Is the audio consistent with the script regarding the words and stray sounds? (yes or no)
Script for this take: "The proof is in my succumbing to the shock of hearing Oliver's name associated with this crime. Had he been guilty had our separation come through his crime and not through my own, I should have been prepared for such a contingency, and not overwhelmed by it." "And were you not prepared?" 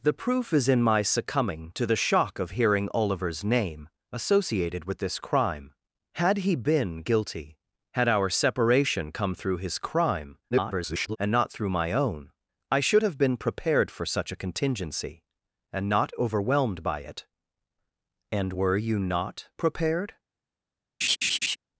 no